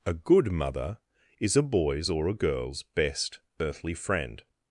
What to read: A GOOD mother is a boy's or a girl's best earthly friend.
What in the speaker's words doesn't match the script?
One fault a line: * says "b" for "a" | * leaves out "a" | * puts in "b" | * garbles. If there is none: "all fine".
all fine